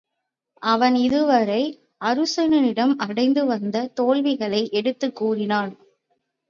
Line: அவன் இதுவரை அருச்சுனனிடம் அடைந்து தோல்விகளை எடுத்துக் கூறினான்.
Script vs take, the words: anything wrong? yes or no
yes